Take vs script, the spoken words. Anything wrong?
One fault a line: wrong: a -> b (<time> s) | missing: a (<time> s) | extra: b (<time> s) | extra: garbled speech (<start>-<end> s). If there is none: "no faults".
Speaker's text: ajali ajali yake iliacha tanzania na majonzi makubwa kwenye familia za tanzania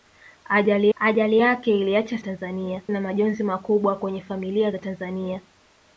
no faults